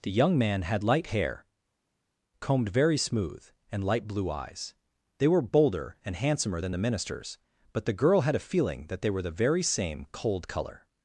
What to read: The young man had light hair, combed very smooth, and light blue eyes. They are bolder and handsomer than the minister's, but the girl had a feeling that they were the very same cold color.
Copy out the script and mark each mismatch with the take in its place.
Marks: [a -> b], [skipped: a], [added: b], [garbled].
The young man had light hair, combed very smooth, and light blue eyes. They [are -> were] bolder and handsomer than the minister's, but the girl had a feeling that they were the very same cold color.